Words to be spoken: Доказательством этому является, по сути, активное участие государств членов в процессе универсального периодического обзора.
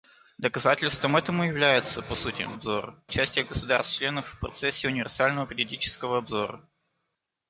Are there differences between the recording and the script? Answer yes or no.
yes